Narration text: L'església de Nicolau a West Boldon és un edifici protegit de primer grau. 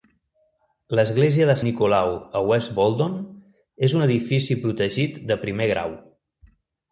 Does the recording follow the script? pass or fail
pass